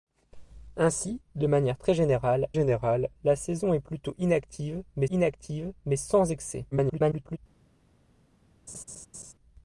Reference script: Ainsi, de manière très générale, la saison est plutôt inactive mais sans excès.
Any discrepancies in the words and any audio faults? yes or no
yes